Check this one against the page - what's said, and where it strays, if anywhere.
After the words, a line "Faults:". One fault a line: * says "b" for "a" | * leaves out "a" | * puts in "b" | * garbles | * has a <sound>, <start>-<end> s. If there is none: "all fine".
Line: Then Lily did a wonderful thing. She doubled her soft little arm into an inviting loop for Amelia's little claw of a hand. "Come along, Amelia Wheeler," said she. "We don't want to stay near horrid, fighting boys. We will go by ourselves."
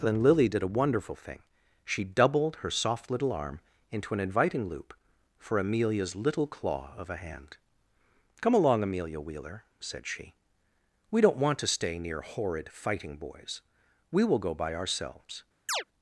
Then Lily did a wonderful thing. She doubled her soft little arm into an inviting loop for Amelia's little claw of a hand. "Come along, Amelia Wheeler," said she. "We don't want to stay near horrid, fighting boys. We will go by ourselves."
Faults:
* has a chirp, 15.7-15.8 s